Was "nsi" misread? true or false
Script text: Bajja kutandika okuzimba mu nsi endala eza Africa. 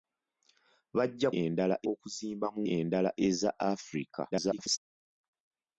true